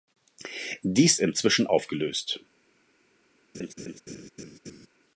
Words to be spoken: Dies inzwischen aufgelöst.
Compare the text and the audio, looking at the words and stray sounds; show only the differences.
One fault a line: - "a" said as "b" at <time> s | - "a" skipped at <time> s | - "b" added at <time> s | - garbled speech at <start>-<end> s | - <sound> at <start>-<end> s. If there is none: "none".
- laugh at 3.5-4.9 s